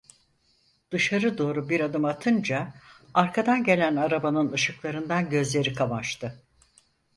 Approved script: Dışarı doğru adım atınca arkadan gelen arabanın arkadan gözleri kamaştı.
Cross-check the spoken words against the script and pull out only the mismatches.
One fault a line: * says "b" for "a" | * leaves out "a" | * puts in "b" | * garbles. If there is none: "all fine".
* puts in "bir"
* says "ışıklarından" for "arkadan"